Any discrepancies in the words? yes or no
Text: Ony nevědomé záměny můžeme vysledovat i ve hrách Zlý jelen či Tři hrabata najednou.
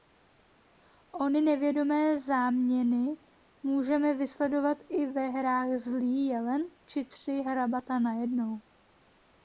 no